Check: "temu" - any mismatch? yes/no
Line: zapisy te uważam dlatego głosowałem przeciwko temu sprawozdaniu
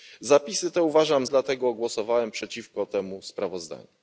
no